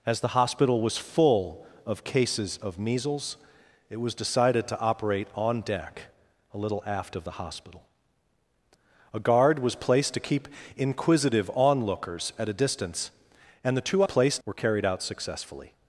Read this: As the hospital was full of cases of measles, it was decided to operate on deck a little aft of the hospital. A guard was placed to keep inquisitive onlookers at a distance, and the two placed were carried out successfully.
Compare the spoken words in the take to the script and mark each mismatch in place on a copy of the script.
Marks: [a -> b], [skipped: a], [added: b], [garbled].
As the hospital was full of cases of measles, it was decided to operate on deck a little aft of the hospital. A guard was placed to keep inquisitive onlookers at a distance, and the two placed were carried out successfully.